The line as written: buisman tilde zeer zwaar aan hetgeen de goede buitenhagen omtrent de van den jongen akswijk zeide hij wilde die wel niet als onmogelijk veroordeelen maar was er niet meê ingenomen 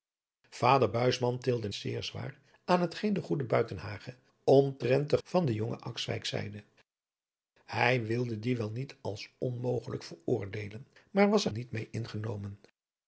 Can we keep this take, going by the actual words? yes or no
yes